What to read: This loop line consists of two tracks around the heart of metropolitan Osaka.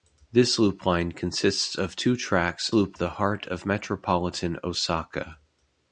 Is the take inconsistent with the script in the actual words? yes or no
yes